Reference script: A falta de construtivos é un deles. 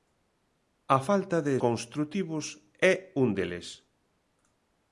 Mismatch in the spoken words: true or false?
false